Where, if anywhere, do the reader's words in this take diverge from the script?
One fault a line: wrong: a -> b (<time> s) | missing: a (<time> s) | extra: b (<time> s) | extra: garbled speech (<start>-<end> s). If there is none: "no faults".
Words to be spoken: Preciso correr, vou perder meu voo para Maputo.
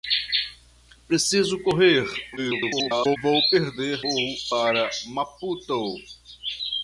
extra: garbled speech (2.4-3.2 s)
missing: meu (4.0 s)